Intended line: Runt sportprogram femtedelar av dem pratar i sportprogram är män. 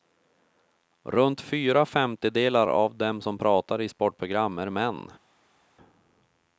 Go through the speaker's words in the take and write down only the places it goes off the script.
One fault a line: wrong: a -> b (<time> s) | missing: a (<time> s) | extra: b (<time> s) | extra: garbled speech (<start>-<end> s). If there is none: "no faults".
wrong: sportprogram -> fyra (1.4 s)
extra: som (3.2 s)